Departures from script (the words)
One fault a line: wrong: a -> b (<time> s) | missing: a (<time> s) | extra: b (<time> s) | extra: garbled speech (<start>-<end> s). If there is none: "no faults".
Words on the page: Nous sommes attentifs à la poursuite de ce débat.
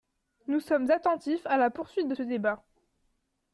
no faults